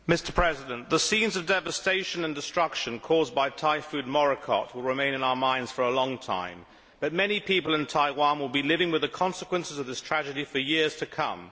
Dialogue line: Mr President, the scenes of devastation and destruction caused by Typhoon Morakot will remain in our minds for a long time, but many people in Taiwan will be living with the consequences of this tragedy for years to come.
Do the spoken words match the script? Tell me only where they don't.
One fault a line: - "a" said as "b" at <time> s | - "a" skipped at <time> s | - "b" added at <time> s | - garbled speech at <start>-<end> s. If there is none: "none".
none